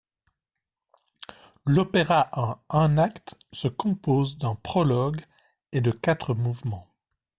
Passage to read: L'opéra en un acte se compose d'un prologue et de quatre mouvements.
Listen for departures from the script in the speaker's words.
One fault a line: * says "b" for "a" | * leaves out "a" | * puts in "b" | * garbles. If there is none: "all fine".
all fine